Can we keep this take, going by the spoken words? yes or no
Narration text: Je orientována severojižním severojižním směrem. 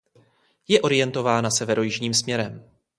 no